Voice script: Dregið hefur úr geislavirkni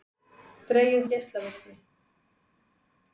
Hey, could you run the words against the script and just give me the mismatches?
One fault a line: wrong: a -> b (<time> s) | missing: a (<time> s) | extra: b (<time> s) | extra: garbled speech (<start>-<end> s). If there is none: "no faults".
missing: hefur (1.1 s)